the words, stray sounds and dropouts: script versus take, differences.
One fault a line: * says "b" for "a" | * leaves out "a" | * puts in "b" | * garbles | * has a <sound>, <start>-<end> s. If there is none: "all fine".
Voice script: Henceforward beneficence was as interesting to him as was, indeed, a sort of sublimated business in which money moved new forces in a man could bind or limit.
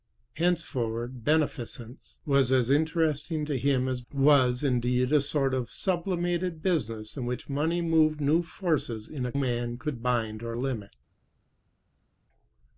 all fine